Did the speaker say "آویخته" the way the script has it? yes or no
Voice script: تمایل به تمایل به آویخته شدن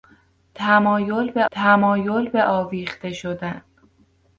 yes